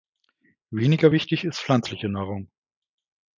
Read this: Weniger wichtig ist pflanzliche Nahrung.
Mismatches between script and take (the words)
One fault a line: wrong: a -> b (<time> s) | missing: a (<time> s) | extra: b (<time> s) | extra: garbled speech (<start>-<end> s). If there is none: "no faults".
no faults